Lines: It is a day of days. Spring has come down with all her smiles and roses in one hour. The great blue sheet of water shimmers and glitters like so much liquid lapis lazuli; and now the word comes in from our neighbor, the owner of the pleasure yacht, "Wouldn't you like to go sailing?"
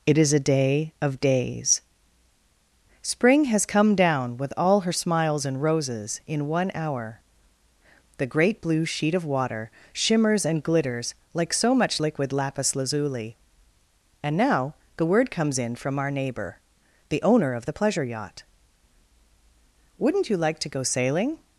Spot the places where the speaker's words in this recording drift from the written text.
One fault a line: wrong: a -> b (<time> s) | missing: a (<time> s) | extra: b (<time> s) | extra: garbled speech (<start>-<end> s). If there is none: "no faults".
no faults